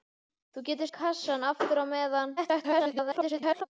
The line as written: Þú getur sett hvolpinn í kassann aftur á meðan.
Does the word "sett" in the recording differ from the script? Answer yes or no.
yes